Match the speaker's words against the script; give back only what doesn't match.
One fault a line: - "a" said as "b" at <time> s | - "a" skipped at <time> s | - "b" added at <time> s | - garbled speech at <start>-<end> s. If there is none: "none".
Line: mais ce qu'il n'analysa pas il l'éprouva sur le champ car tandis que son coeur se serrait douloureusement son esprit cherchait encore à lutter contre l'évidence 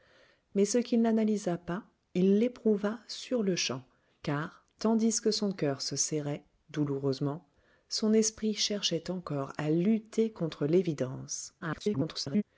- garbled speech at 11.6-12.4 s